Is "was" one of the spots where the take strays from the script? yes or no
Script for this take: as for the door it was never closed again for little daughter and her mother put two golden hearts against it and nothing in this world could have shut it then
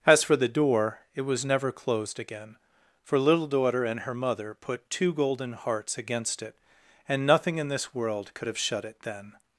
no